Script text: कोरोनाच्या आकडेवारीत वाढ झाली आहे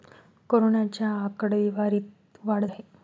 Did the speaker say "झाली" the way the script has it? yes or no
no